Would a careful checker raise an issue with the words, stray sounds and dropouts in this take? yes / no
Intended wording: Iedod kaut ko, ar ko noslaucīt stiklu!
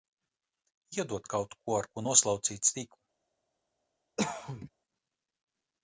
yes